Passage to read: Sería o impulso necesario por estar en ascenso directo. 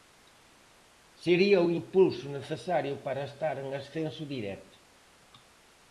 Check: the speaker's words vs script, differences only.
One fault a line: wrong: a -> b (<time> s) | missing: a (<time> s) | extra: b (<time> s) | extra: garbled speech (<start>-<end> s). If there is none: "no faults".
wrong: por -> para (3.1 s)